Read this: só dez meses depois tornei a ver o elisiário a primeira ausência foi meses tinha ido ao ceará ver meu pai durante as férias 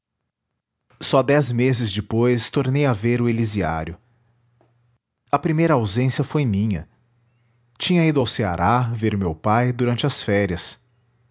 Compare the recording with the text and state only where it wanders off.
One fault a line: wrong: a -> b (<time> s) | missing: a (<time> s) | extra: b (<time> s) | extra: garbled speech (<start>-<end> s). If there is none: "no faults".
wrong: meses -> minha (6.5 s)